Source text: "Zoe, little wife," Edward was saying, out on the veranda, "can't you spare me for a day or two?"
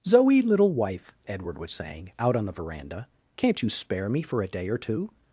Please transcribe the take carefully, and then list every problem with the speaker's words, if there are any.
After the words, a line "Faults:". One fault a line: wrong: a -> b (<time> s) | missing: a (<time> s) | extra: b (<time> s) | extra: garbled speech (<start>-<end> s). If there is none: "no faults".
"Zoe, little wife," Edward was saying, out on the veranda, "can't you spare me for a day or two?"
Faults:
no faults